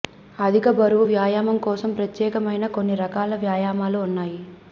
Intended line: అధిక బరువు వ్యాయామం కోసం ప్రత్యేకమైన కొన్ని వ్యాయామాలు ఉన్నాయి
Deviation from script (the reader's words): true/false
true